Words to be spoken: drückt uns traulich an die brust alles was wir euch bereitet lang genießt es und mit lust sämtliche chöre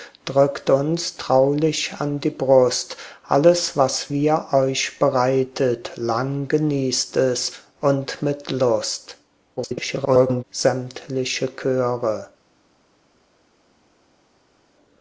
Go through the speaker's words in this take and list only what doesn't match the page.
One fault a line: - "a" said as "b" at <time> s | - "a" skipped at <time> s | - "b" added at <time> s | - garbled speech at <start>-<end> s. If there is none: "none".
- garbled speech at 9.6-10.4 s